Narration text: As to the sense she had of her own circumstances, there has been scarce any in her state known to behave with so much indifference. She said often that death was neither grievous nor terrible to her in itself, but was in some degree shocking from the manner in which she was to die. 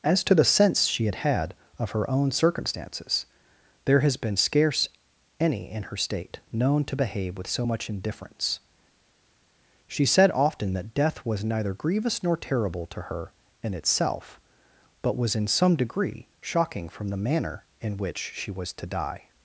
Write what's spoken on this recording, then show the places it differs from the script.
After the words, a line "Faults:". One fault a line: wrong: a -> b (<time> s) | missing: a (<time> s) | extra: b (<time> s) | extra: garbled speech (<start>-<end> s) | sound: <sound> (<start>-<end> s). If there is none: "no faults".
As to the sense she had had of her own circumstances, there has been scarce any in her state known to behave with so much indifference. She said often that death was neither grievous nor terrible to her in itself, but was in some degree shocking from the manner in which she was to die.
Faults:
extra: had (1.1 s)